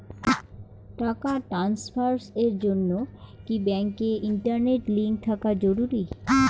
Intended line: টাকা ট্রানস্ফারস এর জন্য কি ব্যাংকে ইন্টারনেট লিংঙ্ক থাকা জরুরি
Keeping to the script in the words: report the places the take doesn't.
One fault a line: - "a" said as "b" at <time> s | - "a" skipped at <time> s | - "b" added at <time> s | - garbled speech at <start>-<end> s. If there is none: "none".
none